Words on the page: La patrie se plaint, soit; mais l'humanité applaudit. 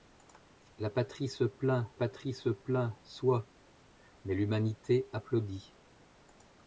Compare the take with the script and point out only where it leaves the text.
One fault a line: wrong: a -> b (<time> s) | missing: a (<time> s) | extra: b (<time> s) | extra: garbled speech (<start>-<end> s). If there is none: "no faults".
extra: patrie se plaint (1.9 s)